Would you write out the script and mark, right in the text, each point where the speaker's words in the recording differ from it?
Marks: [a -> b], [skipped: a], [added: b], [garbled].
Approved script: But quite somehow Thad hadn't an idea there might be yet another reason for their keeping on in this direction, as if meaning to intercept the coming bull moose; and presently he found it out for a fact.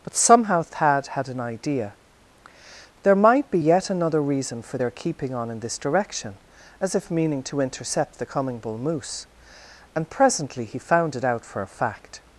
But [skipped: quite] somehow Thad [hadn't -> had] an idea there might be yet another reason for their keeping on in this direction, as if meaning to intercept the coming bull moose; and presently he found it out for a fact.